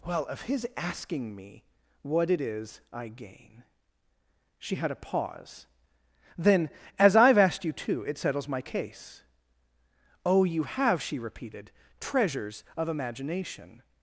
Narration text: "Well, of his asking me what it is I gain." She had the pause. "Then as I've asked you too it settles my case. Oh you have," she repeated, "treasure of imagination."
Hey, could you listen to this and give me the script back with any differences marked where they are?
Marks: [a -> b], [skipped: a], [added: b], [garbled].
"Well, of his asking me what it is I gain." She had [the -> a] pause. "Then as I've asked you too it settles my case. Oh you have," she repeated, ["treasure -> treasures] of imagination."